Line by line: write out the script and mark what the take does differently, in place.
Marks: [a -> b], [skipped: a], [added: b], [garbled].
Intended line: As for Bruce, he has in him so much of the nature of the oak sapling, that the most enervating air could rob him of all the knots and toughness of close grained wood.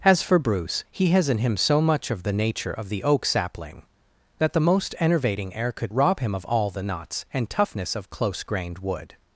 As for Bruce, he has in him so much of the nature of the oak sapling, that the most enervating air could rob him of all the knots and toughness of close grained wood.